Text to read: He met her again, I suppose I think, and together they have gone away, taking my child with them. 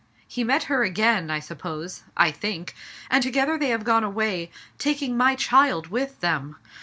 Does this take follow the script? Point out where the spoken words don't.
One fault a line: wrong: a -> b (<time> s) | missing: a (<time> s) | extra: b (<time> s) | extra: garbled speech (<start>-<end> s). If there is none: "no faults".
no faults